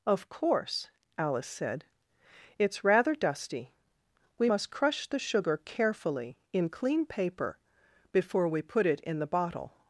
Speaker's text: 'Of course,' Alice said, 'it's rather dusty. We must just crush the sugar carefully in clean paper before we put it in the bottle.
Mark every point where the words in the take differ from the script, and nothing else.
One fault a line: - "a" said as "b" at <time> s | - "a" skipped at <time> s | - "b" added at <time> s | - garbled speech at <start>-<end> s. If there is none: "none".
- "just" skipped at 4.7 s